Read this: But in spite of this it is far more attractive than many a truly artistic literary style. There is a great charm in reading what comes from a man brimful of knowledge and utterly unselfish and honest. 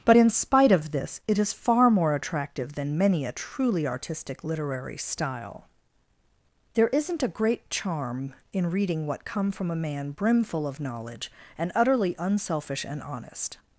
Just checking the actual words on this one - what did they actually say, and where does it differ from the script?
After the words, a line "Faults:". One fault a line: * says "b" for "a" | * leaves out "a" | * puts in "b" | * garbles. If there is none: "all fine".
But in spite of this it is far more attractive than many a truly artistic literary style. There isn't a great charm in reading what come from a man brimful of knowledge and utterly unselfish and honest.
Faults:
* says "isn't" for "is"
* says "come" for "comes"